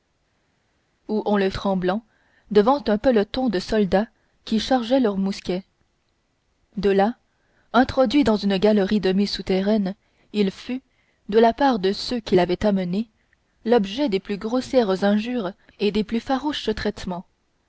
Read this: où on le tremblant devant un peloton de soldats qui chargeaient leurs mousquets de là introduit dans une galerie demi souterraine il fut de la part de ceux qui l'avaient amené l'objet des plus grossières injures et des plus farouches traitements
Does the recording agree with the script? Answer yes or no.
yes